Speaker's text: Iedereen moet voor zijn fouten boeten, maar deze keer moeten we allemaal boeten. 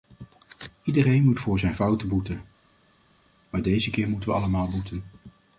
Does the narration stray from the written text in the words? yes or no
no